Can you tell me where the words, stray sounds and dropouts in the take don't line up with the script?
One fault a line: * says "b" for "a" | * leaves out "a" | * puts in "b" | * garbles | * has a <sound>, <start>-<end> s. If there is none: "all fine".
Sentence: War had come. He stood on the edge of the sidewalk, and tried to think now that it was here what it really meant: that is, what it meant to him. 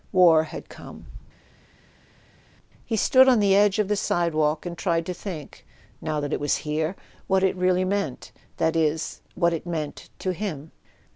all fine